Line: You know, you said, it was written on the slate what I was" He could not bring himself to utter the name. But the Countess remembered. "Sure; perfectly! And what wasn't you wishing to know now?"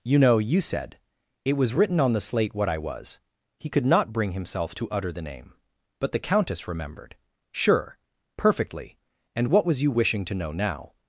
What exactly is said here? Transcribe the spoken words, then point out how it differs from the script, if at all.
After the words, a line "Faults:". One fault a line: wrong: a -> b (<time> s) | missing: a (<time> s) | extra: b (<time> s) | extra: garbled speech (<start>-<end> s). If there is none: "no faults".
You know, you said, it was written on the slate what I was" He could not bring himself to utter the name. But the Countess remembered. "Sure; perfectly! And what was you wishing to know now?"
Faults:
wrong: wasn't -> was (9.7 s)